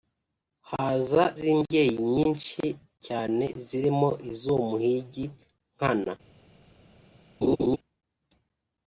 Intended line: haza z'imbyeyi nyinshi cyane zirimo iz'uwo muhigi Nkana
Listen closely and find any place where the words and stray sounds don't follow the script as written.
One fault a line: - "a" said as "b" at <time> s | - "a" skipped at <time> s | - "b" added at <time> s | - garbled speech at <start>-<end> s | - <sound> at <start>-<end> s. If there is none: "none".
- laugh at 7.4-7.8 s